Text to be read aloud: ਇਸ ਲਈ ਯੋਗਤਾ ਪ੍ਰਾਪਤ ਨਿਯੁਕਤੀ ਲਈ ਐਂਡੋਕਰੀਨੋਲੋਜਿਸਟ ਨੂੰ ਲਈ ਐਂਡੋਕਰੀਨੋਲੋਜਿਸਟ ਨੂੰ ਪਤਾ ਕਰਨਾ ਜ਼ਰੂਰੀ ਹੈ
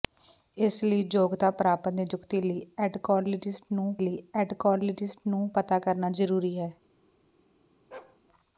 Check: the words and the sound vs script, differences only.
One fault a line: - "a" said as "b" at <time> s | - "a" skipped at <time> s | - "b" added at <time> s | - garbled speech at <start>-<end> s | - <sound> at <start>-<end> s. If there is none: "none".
- bark at 7.9-8.2 s